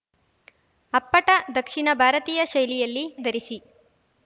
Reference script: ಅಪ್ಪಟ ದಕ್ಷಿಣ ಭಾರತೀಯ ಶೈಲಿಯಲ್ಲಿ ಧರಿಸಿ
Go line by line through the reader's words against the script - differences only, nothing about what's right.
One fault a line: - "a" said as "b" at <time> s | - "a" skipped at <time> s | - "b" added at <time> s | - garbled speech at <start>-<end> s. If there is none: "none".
none